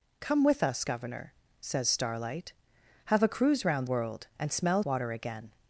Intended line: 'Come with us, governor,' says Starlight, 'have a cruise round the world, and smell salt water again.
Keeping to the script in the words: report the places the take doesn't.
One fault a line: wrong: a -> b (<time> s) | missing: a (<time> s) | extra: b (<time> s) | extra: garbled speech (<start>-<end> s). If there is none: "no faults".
missing: the (3.8 s)
missing: salt (4.8 s)